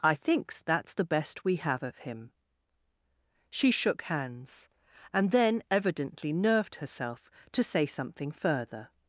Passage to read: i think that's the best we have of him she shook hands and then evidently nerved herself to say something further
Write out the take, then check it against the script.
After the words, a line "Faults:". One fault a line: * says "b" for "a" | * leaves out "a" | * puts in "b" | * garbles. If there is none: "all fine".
i thinks that's the best we have of him she shook hands and then evidently nerved herself to say something further
Faults:
* says "thinks" for "think"